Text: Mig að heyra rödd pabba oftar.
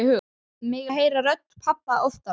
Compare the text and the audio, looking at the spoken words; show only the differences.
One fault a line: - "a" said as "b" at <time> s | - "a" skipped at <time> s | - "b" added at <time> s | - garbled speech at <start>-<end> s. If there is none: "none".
none